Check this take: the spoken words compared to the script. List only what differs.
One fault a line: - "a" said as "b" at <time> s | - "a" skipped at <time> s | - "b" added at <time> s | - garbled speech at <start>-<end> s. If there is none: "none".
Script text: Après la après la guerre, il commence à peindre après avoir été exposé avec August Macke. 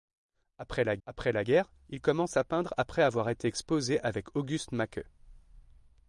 none